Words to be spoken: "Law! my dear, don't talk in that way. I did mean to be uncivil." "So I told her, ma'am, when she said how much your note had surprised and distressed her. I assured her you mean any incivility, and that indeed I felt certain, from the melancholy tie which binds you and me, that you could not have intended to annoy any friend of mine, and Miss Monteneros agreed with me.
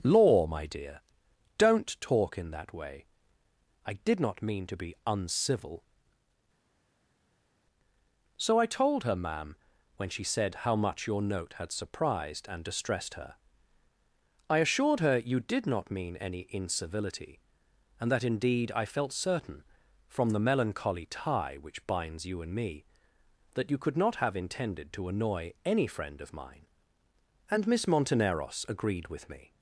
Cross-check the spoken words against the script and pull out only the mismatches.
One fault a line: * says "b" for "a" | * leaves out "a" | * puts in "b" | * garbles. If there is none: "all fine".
* puts in "not"
* puts in "did not"